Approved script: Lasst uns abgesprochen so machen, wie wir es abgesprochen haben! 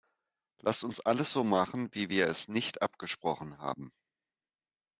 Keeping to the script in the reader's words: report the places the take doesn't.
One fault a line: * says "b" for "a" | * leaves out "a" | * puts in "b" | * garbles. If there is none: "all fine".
* says "alles" for "abgesprochen"
* puts in "nicht"